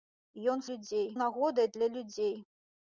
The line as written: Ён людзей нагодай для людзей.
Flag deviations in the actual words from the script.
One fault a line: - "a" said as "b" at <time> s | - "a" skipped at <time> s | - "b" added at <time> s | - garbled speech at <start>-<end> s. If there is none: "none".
none